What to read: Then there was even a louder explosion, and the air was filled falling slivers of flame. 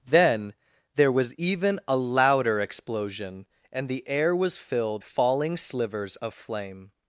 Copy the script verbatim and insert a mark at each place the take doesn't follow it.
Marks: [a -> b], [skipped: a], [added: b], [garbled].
Then there was even a louder explosion, and the air was filled falling slivers of flame.